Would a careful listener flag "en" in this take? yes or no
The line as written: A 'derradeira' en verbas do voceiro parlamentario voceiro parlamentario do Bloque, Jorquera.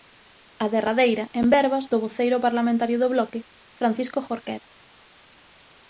no